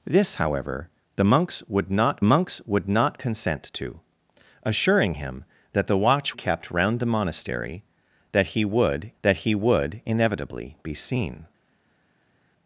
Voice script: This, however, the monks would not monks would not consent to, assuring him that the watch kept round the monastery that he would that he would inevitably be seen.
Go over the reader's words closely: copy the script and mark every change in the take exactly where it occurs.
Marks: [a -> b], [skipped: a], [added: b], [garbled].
This, however, the monks would not monks would not consent to, assuring him that the watch kept round the monastery that he would that he would inevitably be seen.